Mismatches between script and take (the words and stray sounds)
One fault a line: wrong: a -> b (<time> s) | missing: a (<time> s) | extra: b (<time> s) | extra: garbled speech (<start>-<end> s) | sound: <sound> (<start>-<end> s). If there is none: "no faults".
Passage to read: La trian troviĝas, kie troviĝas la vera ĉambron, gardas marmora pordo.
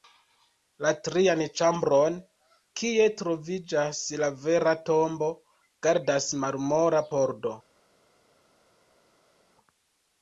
wrong: troviĝas -> ĉambron (1.6 s)
wrong: ĉambron -> tombo (4.9 s)